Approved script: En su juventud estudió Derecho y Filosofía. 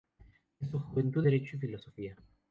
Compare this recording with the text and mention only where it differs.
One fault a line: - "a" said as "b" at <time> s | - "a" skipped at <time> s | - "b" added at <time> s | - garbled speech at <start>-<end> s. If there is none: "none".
- "estudió" skipped at 1.2 s